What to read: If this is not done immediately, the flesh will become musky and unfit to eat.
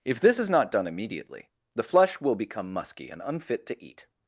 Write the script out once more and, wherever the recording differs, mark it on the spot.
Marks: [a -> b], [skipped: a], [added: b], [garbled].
If this is not done immediately, the flesh will become musky and unfit to eat.